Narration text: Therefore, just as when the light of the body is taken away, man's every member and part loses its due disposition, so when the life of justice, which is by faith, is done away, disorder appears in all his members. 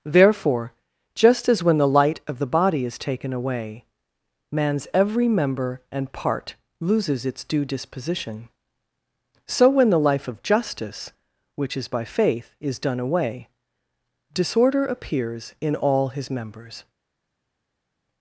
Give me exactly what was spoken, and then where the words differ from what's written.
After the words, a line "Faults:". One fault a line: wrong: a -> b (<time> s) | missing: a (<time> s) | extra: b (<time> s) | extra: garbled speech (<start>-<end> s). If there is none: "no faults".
Therefore, just as when the light of the body is taken away, man's every member and part loses its due disposition, so when the life of justice, which is by faith, is done away, disorder appears in all his members.
Faults:
no faults